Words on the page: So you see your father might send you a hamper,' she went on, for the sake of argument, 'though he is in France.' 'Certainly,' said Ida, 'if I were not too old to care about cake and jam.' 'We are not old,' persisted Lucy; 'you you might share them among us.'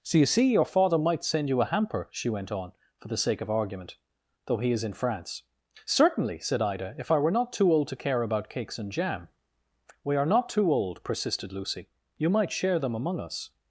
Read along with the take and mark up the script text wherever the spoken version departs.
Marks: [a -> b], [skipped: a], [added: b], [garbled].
So you see your father might send you a hamper,' she went on, for the sake of argument, 'though he is in France.' 'Certainly,' said Ida, 'if I were not too old to care about [cake -> cakes] and jam.' 'We are not [added: too] old,' persisted Lucy; 'you [skipped: you] might share them among us.'